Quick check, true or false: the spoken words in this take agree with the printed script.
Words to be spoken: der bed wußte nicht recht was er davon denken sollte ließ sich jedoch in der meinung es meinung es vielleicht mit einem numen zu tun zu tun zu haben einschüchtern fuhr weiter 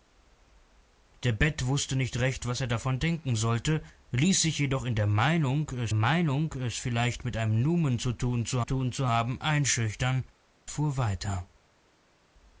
true